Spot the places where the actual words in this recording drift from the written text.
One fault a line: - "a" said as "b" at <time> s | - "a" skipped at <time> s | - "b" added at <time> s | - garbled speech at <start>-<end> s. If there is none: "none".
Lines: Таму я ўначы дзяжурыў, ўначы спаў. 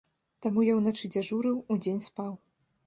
- "ўначы" said as "удзень" at 1.8 s